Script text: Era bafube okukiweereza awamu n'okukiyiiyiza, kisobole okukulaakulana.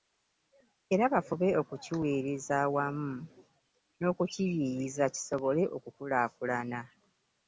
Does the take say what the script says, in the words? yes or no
yes